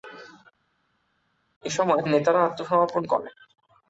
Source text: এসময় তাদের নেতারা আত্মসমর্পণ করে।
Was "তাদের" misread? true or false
true